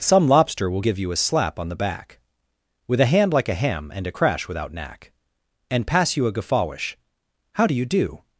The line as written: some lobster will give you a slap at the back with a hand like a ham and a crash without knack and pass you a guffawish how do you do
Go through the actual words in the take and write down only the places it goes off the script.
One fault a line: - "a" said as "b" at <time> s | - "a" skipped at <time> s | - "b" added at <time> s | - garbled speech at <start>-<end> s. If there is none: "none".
- "at" said as "on" at 1.6 s